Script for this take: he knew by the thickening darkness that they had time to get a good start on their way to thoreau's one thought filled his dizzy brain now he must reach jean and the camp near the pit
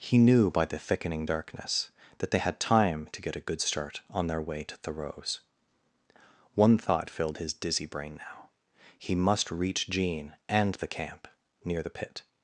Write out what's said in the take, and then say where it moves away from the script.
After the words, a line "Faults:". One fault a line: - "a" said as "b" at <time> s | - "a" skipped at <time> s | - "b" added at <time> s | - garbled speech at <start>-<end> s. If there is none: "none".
he knew by the thickening darkness that they had time to get a good start on their way to thoreau's one thought filled his dizzy brain now he must reach jean and the camp near the pit
Faults:
none